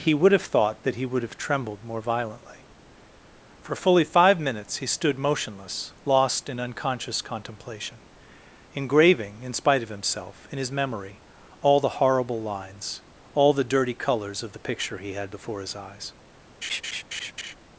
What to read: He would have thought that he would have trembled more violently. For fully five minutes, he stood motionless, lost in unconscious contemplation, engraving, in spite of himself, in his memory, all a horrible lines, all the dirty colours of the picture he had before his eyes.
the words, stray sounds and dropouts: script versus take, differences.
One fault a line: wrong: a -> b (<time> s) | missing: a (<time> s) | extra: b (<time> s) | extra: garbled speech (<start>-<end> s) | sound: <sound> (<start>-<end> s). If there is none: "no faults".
wrong: a -> the (11.8 s)
sound: laugh (16.6-17.5 s)